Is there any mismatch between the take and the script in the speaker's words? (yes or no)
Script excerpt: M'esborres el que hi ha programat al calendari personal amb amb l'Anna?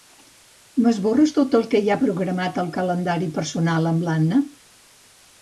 yes